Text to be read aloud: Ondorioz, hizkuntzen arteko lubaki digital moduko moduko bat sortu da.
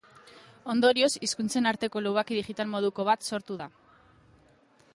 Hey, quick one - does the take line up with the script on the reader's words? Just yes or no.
no